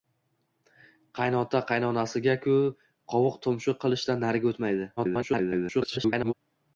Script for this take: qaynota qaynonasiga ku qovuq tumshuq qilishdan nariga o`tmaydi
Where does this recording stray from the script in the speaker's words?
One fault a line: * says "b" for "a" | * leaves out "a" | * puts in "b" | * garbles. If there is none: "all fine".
* garbles